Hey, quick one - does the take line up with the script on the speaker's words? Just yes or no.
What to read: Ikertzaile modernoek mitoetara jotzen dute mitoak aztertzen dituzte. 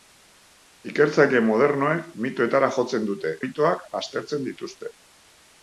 yes